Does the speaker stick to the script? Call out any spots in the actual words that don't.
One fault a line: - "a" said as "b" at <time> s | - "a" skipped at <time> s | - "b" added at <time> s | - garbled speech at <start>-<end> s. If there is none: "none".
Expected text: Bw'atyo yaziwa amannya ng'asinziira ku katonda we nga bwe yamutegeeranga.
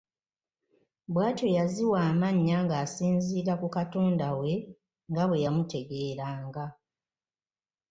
none